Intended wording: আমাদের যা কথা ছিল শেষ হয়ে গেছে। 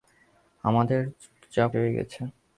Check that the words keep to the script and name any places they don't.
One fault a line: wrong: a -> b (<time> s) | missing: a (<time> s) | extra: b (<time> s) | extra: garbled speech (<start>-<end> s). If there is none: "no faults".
missing: কথা ছিল শেষ (1.6 s)